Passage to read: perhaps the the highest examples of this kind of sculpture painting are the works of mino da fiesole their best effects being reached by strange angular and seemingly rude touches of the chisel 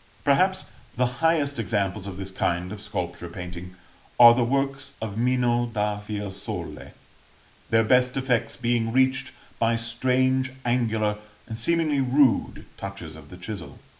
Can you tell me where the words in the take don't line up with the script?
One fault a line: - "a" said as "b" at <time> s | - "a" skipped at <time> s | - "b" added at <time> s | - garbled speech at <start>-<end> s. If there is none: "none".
- "the" skipped at 1.1 s